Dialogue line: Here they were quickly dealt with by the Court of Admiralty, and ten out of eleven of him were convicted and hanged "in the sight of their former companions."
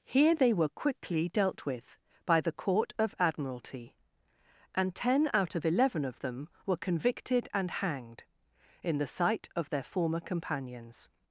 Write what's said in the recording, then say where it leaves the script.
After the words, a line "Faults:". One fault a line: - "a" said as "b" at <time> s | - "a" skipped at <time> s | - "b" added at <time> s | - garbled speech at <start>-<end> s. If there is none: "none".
Here they were quickly dealt with by the Court of Admiralty, and ten out of eleven of them were convicted and hanged "in the sight of their former companions."
Faults:
- "him" said as "them" at 6.2 s